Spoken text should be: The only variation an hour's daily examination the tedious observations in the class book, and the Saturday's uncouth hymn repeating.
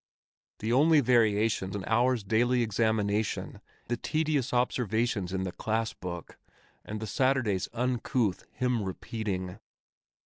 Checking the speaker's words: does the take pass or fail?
pass